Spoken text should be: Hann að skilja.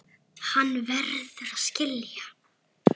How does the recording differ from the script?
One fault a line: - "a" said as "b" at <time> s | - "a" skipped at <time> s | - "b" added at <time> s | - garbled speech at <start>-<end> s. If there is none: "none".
- "verður" added at 0.9 s